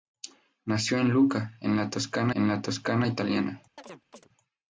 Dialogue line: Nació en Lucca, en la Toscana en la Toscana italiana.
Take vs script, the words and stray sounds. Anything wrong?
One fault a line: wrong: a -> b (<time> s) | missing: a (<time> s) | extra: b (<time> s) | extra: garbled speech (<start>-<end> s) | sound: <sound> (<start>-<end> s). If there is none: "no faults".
sound: chirp (3.8-4.3 s)